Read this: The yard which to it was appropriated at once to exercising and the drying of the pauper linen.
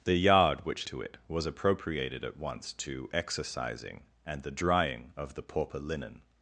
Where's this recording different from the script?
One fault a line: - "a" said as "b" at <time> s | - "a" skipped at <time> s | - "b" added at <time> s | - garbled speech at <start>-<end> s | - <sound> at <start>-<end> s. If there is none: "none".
none